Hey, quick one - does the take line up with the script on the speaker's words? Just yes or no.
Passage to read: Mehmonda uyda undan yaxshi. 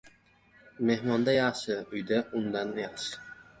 no